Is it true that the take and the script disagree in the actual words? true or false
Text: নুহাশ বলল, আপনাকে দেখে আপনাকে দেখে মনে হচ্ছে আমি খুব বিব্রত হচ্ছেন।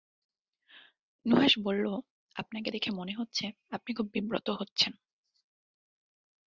true